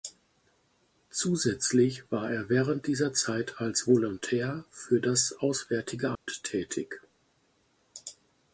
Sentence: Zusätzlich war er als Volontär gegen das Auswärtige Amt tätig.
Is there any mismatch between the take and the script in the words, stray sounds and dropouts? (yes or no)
yes